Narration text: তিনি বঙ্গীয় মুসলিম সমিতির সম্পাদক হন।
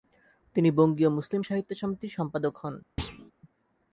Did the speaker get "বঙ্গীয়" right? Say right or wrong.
right